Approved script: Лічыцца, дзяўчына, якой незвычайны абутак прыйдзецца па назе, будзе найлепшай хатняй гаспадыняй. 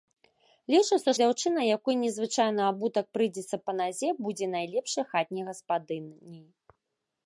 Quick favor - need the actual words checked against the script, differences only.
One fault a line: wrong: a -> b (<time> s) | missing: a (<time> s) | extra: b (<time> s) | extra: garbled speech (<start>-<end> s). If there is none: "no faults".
no faults